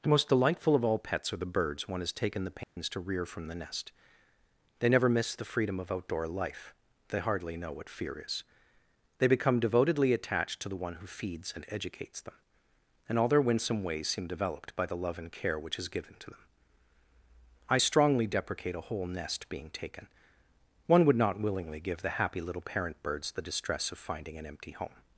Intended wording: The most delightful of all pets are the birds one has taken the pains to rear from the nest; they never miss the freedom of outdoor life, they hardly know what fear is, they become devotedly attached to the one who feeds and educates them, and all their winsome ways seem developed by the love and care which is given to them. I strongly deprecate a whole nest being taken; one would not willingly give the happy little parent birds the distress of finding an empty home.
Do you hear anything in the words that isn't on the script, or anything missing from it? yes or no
no